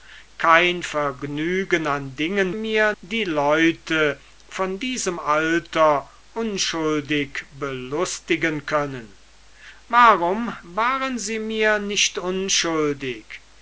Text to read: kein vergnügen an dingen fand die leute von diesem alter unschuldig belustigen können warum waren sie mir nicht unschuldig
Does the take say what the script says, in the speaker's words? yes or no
no